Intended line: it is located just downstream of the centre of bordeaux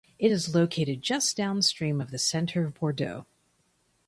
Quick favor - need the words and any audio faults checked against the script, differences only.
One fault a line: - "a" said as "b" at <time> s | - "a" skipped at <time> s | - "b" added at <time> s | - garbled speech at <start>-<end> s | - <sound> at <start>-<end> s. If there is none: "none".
none